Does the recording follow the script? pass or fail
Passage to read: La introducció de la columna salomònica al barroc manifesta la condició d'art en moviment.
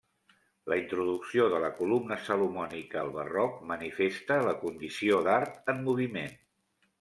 pass